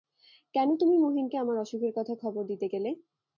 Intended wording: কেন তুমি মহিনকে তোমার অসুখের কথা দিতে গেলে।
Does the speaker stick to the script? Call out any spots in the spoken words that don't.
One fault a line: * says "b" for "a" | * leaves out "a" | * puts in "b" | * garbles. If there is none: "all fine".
* says "আমার" for "তোমার"
* puts in "খবর"